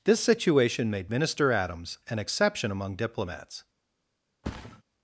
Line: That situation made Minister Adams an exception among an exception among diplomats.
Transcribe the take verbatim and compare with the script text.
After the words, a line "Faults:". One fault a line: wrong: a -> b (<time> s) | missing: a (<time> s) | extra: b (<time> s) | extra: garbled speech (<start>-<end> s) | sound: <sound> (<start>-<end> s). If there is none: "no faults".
This situation made Minister Adams an exception among diplomats.
Faults:
wrong: That -> This (0.0 s)
missing: an exception among (3.0 s)
sound: thud (4.4-4.8 s)